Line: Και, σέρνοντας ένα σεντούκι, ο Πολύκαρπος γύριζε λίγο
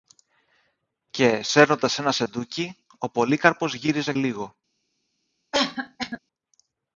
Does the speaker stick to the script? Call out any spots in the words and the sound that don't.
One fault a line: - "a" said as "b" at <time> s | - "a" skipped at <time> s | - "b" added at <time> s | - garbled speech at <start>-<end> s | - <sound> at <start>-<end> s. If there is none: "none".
- cough at 5.5-6.2 s